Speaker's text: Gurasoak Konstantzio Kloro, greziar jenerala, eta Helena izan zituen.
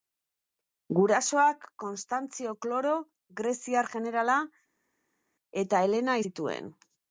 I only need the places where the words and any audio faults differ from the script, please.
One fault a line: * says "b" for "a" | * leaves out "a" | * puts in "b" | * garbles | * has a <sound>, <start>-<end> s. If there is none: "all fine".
* leaves out "izan"